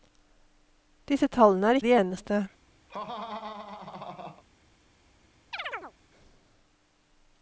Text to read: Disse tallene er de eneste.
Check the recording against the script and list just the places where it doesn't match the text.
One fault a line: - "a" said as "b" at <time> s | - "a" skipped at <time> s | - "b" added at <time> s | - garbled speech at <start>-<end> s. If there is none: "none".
none